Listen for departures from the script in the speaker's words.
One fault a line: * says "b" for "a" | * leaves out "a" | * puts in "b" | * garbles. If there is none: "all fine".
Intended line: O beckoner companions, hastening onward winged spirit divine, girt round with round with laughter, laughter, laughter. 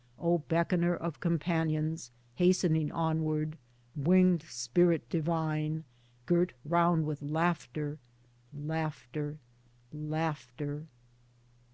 * puts in "of"
* leaves out "round with"